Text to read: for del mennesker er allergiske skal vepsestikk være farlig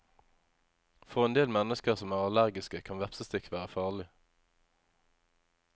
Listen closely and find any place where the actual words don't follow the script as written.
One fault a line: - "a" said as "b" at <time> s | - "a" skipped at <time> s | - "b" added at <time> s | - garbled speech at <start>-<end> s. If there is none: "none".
- "en" added at 1.2 s
- "som" added at 2.0 s
- "skal" said as "kan" at 2.9 s